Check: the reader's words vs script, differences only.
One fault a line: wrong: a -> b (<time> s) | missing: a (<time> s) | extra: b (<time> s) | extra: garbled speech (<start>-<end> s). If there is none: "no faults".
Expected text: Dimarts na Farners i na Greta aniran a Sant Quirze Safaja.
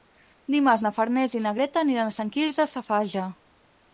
no faults